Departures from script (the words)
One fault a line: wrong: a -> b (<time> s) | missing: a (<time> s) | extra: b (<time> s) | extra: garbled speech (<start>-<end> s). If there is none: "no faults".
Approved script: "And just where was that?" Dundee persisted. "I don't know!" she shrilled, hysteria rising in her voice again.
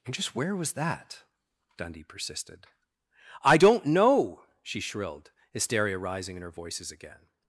wrong: voice -> voices (6.5 s)